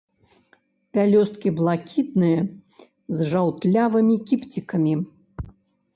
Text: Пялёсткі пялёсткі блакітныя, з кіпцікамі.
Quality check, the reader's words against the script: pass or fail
fail